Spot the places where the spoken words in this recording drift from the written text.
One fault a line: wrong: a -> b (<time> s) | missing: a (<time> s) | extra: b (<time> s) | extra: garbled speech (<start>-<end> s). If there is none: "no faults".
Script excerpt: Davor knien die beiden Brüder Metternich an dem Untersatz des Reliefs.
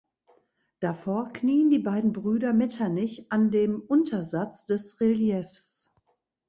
no faults